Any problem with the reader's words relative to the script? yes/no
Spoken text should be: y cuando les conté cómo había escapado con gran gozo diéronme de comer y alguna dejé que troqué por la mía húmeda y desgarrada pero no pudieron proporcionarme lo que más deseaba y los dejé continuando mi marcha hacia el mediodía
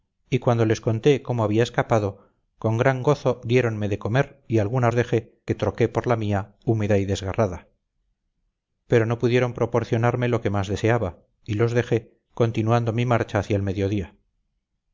no